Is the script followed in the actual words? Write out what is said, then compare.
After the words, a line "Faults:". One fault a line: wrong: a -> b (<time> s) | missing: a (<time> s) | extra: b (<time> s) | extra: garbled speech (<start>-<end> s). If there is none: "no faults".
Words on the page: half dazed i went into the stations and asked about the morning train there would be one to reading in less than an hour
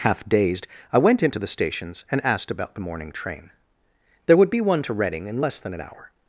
half dazed i went into the stations and asked about the morning train there would be one to reading in less than an hour
Faults:
no faults